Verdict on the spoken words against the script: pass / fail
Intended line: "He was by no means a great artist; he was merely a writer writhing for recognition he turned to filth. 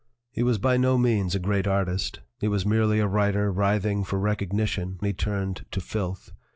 pass